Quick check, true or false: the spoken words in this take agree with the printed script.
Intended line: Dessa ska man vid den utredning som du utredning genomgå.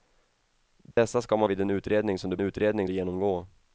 true